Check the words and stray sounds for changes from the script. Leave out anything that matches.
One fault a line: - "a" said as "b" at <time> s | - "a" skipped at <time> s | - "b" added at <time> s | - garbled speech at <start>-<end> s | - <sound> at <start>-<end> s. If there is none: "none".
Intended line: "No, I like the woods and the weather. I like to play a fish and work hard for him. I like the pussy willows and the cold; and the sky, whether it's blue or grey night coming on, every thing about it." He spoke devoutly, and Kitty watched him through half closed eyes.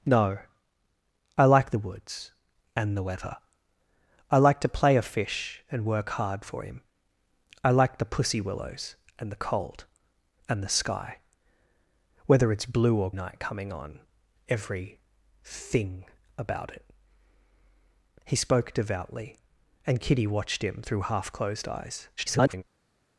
- "grey" skipped at 13.1 s
- garbled speech at 22.2-22.6 s